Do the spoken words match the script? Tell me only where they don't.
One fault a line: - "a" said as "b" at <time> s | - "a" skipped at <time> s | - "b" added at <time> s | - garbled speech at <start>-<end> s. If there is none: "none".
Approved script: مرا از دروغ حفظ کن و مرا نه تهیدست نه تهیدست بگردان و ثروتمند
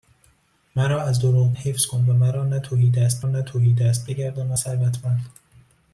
none